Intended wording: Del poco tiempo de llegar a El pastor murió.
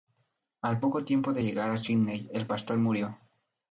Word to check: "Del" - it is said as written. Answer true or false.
false